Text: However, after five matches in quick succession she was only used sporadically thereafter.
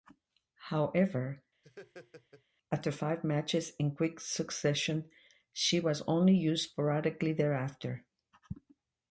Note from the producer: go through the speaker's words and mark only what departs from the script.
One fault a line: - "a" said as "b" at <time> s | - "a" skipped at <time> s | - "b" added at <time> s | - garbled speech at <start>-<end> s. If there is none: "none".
none